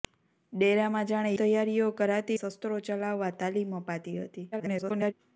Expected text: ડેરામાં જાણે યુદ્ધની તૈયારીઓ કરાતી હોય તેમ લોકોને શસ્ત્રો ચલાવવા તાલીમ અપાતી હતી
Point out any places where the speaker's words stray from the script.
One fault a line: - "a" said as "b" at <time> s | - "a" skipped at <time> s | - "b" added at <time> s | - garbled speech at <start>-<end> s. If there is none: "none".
- "યુદ્ધની" skipped at 1.3 s
- "હોય તેમ લોકોને" skipped at 2.4 s
- garbled speech at 4.5-5.1 s